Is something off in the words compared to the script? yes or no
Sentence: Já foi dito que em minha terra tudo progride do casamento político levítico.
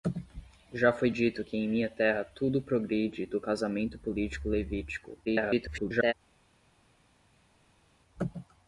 yes